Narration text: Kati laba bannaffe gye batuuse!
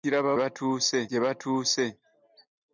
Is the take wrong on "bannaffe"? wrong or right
wrong